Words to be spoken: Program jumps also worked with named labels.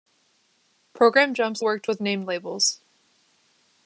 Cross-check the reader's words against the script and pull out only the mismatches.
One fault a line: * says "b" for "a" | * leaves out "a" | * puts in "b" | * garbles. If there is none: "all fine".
* leaves out "also"